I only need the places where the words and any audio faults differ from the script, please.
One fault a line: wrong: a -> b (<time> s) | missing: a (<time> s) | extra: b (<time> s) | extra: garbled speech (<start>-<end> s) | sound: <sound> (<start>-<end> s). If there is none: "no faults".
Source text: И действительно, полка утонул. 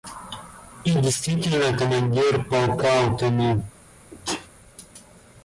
extra: командир (1.7 s)
sound: sneeze (4.1-4.5 s)